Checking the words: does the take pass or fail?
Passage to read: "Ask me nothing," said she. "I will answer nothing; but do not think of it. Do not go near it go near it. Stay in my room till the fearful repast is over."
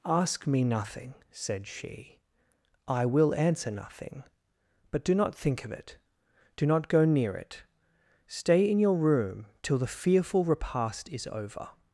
fail